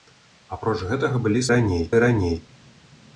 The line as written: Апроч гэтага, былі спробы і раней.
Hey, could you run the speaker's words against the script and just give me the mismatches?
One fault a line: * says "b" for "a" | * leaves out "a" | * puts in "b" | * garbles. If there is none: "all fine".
* says "раней" for "спробы"